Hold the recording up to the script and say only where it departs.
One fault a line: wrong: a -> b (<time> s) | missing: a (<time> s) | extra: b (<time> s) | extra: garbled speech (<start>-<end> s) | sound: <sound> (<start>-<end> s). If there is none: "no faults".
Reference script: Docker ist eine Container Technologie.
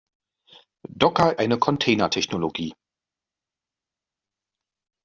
missing: ist (1.4 s)